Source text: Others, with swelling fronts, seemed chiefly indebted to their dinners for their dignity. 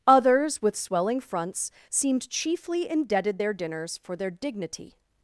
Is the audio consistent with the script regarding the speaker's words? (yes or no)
no